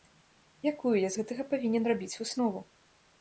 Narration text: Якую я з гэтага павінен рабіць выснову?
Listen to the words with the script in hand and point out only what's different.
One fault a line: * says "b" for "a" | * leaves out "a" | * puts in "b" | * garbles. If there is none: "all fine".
all fine